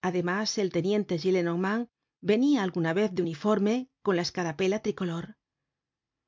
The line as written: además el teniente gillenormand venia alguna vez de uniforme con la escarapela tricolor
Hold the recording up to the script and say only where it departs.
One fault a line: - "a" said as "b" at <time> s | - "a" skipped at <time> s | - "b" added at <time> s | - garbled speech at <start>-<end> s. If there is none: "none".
none